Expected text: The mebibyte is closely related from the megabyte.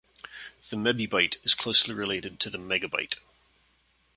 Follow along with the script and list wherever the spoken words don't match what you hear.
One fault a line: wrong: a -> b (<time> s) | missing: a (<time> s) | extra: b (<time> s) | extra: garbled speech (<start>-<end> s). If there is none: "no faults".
wrong: from -> to (2.4 s)